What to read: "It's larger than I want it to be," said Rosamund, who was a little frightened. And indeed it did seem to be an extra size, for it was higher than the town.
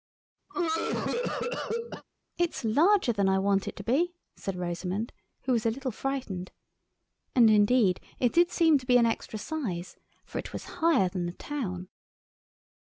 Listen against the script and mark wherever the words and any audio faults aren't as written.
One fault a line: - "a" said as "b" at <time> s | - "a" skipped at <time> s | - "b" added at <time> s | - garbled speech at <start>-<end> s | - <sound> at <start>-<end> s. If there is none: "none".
- cough at 0.5-2.0 s